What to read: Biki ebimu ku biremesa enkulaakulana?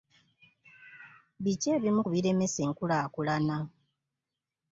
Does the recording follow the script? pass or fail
pass